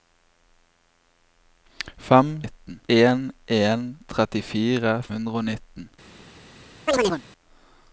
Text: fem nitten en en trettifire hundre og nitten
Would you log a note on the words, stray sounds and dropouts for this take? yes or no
yes